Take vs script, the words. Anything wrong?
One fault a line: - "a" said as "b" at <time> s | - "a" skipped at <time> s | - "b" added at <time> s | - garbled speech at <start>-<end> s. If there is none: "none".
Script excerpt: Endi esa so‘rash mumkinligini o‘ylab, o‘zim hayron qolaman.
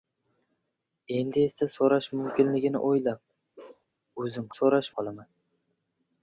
- "hayron" said as "so‘rash" at 4.5 s